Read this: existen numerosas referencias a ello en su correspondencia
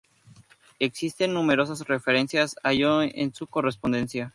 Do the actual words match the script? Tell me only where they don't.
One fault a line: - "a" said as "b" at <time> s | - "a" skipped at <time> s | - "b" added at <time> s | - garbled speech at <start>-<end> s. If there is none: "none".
none